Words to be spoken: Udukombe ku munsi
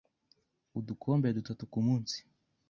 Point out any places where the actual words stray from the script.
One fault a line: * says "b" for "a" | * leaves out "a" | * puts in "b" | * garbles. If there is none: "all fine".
* puts in "dutatu"